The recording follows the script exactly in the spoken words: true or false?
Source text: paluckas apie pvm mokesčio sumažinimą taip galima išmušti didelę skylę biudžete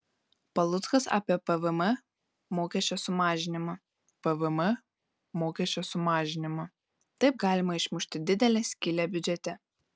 false